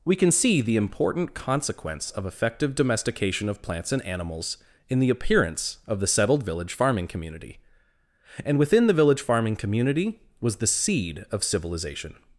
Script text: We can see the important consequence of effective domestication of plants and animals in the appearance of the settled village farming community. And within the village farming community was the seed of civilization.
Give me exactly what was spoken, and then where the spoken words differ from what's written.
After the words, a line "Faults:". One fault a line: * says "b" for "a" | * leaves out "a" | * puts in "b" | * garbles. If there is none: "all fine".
We can see the important consequence of effective domestication of plants and animals in the appearance of the settled village farming community. And within the village farming community was the seed of civilization.
Faults:
all fine